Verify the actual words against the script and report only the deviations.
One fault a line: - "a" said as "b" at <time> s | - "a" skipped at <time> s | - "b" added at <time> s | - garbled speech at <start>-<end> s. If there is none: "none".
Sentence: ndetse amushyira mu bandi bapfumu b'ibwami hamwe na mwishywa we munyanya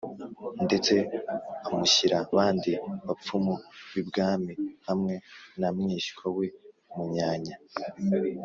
- "mu" skipped at 2.2 s